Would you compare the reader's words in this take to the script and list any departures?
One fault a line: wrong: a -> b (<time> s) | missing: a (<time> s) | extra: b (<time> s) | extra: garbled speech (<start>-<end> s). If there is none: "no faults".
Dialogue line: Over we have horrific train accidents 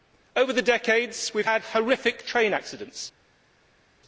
extra: the decades (0.5 s)
extra: had (1.5 s)